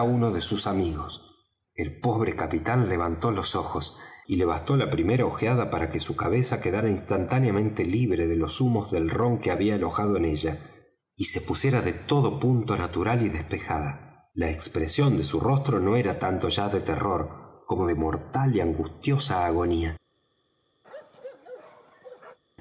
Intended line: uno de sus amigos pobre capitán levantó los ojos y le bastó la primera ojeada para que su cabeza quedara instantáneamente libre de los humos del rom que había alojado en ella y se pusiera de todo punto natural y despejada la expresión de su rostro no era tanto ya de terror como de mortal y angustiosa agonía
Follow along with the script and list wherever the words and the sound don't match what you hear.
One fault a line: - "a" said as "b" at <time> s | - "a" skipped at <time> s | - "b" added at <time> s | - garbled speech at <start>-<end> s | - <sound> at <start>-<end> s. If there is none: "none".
- "el" added at 1.7 s
- bark at 20.8-22.4 s